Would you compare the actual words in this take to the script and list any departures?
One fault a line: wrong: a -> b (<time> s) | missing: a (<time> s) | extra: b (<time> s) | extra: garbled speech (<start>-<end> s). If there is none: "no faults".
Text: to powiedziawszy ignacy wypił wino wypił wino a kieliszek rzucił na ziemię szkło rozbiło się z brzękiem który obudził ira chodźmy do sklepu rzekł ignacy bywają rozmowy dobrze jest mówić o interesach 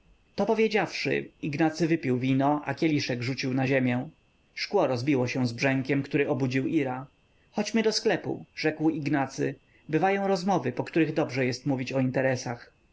missing: wypił wino (2.6 s)
extra: po których (10.7 s)